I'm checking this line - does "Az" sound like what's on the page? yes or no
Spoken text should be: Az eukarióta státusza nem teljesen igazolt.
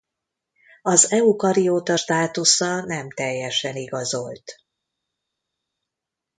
yes